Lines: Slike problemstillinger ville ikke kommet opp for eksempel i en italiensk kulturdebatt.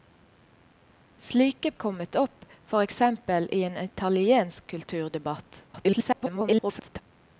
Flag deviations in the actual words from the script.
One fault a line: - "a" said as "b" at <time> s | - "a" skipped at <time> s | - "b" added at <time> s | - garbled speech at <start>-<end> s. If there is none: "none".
- "problemstillinger ville ikke" skipped at 1.7 s
- garbled speech at 5.7-7.0 s